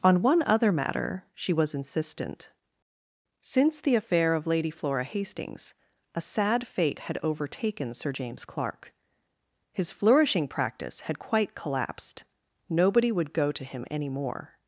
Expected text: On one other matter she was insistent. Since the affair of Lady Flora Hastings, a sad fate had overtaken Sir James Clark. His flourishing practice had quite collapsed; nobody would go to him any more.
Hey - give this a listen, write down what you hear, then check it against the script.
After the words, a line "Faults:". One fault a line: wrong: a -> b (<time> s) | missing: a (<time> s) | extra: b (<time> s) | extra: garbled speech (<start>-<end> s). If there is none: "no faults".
On one other matter she was insistent. Since the affair of Lady Flora Hastings, a sad fate had overtaken Sir James Clark. His flourishing practice had quite collapsed; nobody would go to him any more.
Faults:
no faults